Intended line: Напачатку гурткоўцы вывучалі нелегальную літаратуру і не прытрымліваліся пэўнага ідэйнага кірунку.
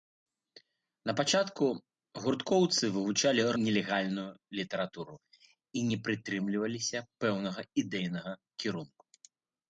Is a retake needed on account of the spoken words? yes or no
no